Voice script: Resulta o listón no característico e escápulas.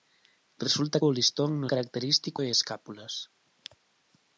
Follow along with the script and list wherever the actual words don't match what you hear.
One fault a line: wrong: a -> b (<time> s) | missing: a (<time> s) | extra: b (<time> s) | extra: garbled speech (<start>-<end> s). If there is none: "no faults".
no faults